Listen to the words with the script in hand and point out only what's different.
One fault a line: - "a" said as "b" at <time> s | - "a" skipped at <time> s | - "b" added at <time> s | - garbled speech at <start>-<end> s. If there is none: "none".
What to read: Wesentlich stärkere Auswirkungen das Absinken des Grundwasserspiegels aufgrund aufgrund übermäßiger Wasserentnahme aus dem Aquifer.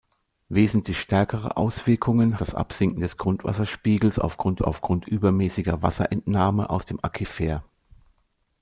none